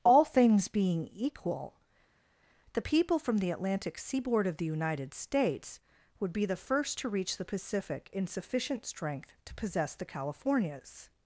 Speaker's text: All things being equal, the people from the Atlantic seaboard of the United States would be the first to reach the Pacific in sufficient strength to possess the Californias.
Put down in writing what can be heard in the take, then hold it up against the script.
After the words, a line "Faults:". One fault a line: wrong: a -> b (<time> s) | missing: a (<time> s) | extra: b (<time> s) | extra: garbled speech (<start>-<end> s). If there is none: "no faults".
All things being equal, the people from the Atlantic seaboard of the United States would be the first to reach the Pacific in sufficient strength to possess the Californias.
Faults:
no faults